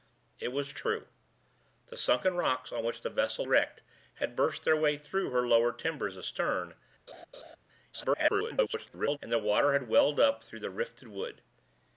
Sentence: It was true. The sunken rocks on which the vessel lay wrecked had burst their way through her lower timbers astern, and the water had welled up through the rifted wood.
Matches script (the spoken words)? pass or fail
fail